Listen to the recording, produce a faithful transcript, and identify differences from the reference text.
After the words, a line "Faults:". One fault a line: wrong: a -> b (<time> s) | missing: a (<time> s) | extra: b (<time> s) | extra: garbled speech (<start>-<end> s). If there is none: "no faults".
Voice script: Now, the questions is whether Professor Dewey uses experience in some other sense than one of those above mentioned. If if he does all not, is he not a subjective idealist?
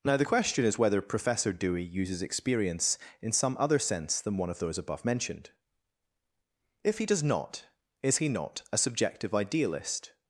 Now, the question is whether Professor Dewey uses experience in some other sense than one of those above mentioned. If he does not, is he not a subjective idealist?
Faults:
wrong: questions -> question (0.2 s)
missing: if (7.0 s)
missing: all (7.2 s)